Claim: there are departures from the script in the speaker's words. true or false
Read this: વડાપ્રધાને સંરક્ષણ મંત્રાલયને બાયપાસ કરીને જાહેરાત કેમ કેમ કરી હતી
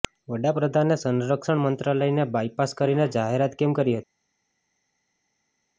true